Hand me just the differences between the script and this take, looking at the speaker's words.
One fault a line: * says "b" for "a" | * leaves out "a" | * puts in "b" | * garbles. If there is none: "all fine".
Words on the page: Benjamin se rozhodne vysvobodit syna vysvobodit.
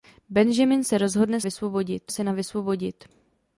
all fine